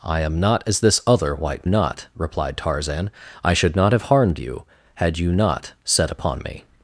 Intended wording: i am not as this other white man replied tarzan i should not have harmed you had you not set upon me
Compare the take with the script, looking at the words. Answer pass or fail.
fail